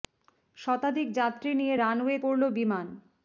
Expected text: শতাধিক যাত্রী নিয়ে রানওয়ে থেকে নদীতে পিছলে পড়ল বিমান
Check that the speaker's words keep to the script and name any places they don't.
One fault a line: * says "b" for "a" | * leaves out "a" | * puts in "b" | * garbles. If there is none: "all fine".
* leaves out "থেকে নদীতে পিছলে"